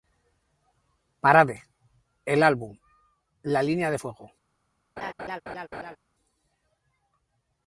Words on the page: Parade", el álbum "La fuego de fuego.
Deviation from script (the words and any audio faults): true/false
true